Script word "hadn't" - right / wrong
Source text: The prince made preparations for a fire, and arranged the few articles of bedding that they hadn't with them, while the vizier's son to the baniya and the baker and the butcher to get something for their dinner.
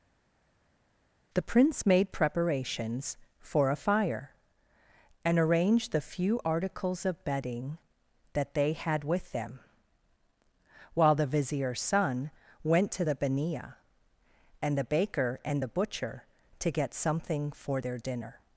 wrong